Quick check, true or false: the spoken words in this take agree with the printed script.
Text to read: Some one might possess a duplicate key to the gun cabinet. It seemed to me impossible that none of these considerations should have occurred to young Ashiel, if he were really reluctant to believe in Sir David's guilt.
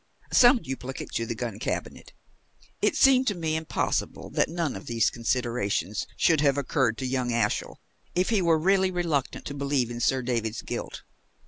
false